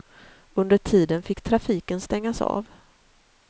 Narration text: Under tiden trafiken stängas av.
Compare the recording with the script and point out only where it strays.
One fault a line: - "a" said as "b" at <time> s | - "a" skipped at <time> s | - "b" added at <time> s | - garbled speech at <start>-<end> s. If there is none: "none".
- "fick" added at 1.2 s